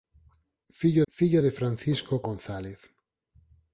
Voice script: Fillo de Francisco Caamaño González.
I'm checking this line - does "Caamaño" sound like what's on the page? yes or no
no